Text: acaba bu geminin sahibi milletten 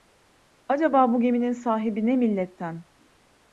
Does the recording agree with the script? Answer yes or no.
no